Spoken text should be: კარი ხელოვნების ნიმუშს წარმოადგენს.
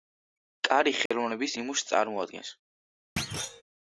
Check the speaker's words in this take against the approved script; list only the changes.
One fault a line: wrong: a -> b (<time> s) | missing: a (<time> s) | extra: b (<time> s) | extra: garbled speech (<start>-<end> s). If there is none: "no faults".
no faults